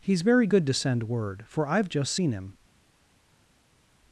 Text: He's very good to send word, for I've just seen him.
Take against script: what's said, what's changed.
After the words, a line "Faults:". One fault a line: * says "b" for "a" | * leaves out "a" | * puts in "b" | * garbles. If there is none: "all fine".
He's very good to send word, for I've just seen him.
Faults:
all fine